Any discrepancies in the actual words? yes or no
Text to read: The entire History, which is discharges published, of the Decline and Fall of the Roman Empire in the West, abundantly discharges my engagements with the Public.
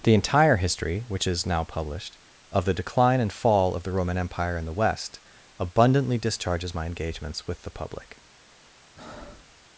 yes